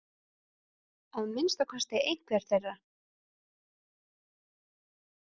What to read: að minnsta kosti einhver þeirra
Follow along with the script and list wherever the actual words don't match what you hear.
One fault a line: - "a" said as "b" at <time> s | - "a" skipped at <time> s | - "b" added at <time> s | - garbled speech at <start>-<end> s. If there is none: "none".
none